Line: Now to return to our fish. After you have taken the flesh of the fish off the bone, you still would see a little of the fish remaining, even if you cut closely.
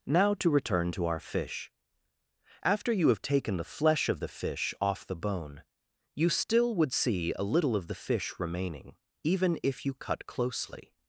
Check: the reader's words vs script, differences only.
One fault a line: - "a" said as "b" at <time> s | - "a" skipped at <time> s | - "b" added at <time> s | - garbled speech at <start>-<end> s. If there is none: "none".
none